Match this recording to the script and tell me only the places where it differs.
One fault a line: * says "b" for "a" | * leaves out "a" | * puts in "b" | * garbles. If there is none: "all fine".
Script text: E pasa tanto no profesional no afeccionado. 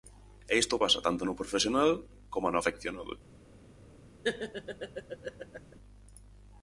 * puts in "isto"
* puts in "coma"